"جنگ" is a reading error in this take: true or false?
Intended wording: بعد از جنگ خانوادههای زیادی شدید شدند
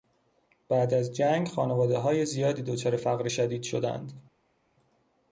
false